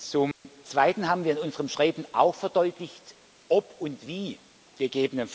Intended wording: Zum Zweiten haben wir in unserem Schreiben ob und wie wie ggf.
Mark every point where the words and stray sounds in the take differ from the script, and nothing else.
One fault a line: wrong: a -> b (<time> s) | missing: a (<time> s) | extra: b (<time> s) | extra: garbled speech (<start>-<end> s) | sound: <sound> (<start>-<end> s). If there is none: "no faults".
sound: dropout (0.3-0.4 s)
extra: auch verdeutlicht (2.1 s)
missing: wie (4.4 s)